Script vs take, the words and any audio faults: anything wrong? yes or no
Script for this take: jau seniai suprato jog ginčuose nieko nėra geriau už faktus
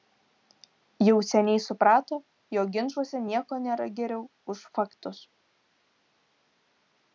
no